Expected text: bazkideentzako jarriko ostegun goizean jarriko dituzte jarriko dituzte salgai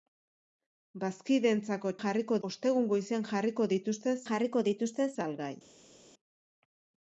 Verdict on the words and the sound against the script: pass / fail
pass